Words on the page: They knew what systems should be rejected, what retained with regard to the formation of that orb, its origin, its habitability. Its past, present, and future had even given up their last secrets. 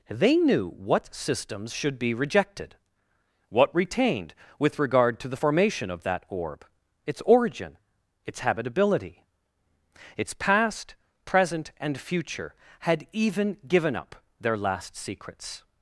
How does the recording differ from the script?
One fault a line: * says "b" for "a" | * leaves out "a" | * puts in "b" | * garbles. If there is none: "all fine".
all fine